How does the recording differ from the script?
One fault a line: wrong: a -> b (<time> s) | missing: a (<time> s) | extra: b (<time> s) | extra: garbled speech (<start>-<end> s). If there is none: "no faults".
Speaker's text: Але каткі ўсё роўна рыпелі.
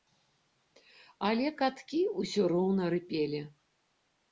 no faults